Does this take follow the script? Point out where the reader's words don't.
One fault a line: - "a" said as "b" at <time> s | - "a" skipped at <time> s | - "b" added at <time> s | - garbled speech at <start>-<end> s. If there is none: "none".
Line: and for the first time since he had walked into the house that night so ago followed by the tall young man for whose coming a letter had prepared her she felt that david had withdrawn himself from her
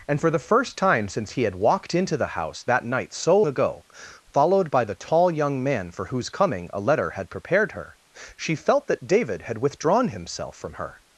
none